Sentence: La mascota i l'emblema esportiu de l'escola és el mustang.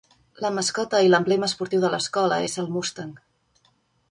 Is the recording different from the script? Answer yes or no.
no